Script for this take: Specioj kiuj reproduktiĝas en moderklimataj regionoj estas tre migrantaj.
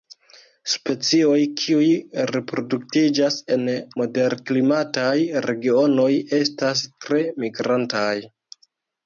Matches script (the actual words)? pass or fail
pass